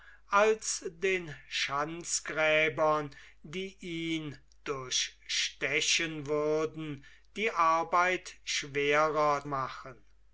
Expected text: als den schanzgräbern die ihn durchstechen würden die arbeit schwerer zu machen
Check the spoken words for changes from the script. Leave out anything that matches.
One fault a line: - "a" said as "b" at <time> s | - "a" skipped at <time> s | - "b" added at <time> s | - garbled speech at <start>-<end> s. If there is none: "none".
- "zu" skipped at 9.4 s